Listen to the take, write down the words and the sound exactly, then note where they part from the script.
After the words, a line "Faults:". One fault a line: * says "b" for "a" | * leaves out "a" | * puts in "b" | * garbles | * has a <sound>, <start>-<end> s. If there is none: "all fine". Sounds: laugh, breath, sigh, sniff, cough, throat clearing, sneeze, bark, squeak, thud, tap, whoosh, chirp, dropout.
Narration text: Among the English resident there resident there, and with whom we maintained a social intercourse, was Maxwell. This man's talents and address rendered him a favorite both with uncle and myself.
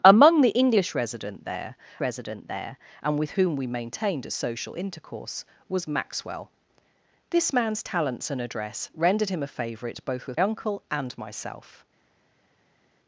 Among the English resident there resident there, and with whom we maintained a social intercourse, was Maxwell. This man's talents and address rendered him a favorite both with uncle and myself.
Faults:
all fine